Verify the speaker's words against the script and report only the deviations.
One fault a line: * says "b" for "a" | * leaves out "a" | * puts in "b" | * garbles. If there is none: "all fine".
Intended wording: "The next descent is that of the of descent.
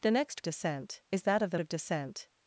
all fine